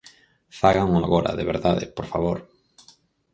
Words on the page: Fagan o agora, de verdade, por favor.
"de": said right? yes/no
yes